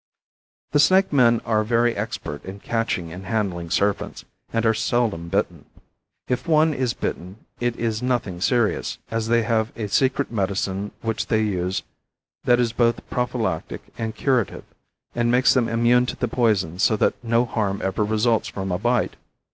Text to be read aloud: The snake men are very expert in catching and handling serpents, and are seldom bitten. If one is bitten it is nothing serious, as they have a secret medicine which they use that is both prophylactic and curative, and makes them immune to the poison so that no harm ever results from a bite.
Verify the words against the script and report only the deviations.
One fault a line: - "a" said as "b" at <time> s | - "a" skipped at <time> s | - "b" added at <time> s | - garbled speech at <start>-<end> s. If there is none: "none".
none